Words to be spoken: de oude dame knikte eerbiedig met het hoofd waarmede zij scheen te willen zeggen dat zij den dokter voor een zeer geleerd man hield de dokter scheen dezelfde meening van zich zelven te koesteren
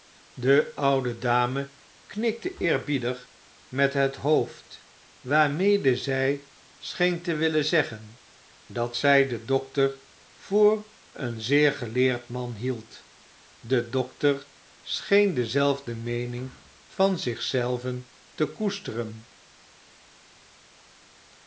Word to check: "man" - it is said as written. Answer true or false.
true